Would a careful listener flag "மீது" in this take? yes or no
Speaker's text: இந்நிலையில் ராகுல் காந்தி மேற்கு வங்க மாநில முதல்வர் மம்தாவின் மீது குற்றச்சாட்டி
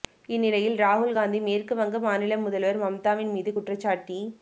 no